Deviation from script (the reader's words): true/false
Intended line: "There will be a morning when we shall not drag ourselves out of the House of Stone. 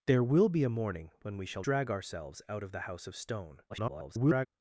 true